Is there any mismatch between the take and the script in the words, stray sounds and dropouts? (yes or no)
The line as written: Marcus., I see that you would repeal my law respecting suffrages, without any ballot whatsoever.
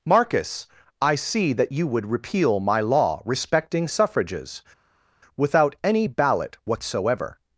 no